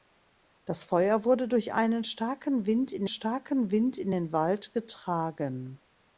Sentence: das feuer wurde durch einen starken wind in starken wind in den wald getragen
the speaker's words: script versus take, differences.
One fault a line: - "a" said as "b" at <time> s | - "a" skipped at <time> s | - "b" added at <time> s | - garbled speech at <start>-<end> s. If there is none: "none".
none